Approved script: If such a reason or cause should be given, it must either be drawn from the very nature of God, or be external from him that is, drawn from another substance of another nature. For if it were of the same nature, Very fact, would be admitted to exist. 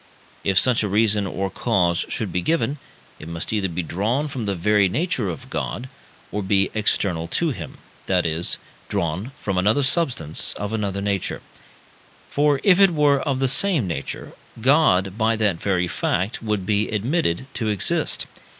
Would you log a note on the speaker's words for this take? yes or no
yes